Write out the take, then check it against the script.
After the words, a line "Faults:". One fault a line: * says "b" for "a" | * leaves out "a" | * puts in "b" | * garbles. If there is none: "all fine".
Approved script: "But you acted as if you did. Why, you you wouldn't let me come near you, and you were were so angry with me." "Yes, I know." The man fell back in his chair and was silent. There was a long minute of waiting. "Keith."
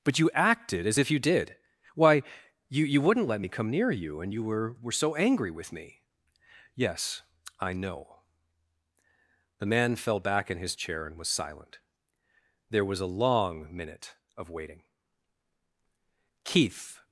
"But you acted as if you did. Why, you you wouldn't let me come near you, and you were were so angry with me." "Yes, I know." The man fell back in his chair and was silent. There was a long minute of waiting. "Keith."
Faults:
all fine